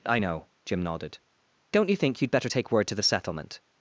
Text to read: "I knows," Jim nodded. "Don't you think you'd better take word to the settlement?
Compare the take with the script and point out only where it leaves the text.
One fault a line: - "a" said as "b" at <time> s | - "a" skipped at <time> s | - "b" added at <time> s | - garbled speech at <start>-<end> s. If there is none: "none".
- "knows" said as "know" at 0.2 s